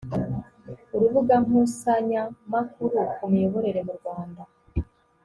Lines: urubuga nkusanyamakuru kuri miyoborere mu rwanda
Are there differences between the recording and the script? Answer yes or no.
yes